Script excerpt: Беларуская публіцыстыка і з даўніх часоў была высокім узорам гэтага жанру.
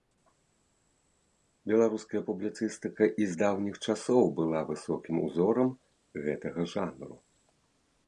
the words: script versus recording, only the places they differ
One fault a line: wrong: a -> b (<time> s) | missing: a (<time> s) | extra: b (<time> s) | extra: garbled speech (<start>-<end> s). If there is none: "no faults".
no faults